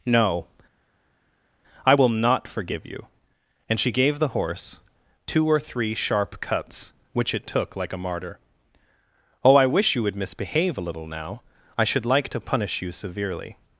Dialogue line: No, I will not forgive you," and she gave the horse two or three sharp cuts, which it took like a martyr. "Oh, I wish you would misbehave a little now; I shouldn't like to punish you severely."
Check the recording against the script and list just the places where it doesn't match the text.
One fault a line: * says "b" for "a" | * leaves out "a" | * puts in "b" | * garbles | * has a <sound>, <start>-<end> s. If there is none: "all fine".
* says "should" for "shouldn't"